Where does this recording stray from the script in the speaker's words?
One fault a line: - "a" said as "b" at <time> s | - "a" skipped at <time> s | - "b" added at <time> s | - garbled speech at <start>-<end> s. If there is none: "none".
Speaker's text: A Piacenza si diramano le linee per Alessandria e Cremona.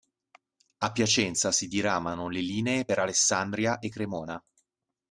none